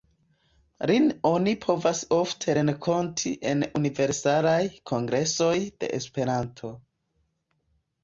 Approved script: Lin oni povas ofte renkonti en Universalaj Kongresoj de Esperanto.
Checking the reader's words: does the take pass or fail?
pass